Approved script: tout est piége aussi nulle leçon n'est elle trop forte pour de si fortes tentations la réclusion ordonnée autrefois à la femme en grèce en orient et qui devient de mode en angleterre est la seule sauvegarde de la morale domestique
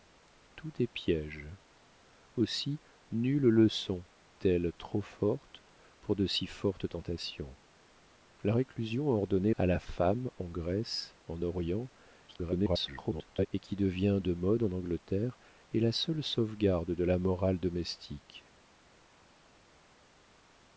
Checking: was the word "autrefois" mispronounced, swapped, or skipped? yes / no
yes